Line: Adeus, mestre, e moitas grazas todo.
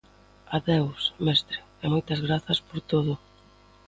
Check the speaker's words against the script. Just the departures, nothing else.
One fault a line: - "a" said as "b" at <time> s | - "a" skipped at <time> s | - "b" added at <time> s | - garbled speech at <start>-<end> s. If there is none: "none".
- "por" added at 2.7 s